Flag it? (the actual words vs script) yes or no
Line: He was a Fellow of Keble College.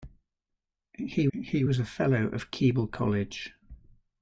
yes